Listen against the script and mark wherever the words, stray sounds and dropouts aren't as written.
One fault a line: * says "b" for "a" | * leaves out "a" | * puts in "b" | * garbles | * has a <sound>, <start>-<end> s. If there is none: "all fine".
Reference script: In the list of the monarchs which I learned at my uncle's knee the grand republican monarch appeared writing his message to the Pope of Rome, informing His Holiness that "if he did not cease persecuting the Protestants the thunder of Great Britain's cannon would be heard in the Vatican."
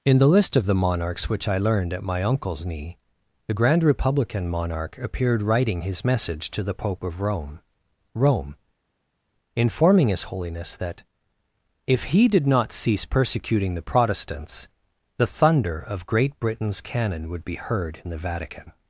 * puts in "Rome"